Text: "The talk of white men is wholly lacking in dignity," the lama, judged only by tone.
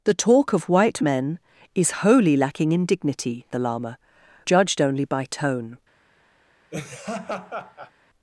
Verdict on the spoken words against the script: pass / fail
pass